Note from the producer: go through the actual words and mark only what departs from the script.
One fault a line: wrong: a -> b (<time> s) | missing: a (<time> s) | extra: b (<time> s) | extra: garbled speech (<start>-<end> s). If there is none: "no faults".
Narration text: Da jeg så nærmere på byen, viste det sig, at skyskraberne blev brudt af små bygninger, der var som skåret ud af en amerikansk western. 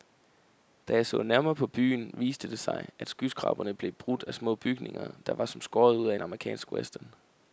no faults